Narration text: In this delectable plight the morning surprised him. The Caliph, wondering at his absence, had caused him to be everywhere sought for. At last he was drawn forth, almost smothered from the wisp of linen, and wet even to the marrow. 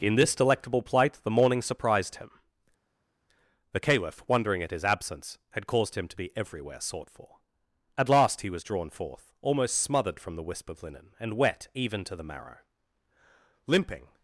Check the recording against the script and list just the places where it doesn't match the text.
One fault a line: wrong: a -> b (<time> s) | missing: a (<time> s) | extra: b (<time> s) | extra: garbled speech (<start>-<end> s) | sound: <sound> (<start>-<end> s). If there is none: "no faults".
extra: Limping (13.7 s)